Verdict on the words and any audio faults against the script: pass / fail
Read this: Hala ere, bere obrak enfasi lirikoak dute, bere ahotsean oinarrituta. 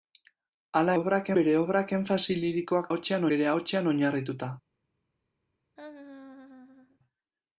fail